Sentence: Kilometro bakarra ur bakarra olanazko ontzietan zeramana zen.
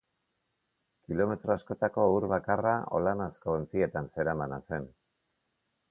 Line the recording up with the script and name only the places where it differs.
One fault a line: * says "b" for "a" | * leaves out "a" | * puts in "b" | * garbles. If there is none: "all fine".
* says "askotako" for "bakarra"